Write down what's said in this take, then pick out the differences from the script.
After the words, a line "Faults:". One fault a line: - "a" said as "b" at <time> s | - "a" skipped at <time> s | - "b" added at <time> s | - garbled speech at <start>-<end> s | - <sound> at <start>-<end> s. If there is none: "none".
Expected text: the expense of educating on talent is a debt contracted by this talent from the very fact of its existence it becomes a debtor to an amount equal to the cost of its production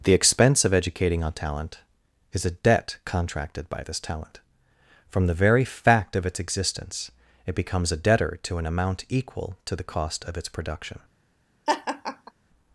the expense of educating on talent is a debt contracted by this talent from the very fact of its existence it becomes a debtor to an amount equal to the cost of its production
Faults:
- laugh at 11.7-12.3 s